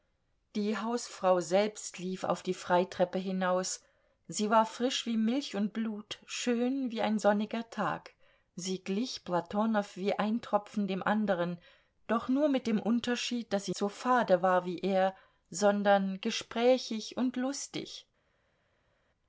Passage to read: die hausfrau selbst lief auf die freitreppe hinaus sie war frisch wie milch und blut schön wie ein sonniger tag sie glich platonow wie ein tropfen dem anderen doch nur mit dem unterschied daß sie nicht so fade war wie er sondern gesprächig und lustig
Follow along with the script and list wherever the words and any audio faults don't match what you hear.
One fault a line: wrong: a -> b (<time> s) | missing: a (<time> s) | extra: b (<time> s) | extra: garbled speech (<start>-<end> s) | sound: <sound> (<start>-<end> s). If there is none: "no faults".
missing: nicht (13.8 s)